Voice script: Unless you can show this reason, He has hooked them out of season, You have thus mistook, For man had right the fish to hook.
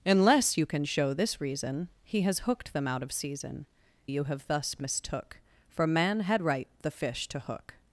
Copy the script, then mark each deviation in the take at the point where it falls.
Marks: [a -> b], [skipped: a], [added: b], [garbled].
Unless you can show this reason, He has hooked them out of season, You have thus mistook, For man had right the fish to hook.